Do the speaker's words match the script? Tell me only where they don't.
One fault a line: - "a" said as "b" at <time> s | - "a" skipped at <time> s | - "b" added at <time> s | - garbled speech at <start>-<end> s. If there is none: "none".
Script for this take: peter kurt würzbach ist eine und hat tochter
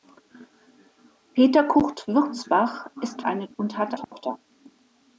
none